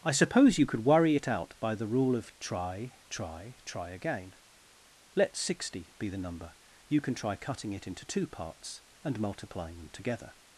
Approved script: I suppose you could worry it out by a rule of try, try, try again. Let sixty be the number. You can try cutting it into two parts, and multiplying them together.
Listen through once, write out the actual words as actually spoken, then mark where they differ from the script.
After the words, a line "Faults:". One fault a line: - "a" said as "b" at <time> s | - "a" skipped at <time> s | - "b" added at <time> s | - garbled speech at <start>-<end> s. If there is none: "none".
I suppose you could worry it out by the rule of try, try, try again. Let sixty be the number. You can try cutting it into two parts, and multiplying them together.
Faults:
- "a" said as "the" at 1.8 s